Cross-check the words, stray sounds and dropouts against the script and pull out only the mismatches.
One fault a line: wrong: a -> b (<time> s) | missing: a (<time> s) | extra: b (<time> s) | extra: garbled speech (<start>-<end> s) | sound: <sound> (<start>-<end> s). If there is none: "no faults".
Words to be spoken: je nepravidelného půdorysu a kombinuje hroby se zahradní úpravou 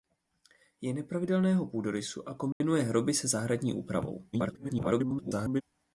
sound: dropout (2.5-2.6 s)
extra: garbled speech (4.3-5.6 s)